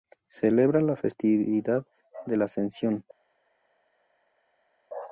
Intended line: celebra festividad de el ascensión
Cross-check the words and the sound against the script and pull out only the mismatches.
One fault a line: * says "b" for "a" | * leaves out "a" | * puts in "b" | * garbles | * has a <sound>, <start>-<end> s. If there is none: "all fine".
* puts in "la"
* says "la" for "el"